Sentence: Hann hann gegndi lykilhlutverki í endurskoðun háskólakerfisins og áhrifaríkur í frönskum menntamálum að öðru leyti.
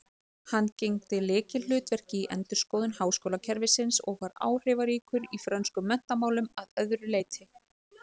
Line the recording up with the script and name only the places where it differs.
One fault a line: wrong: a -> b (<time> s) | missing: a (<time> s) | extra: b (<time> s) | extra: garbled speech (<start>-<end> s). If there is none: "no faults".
missing: hann (0.7 s)
extra: var (4.2 s)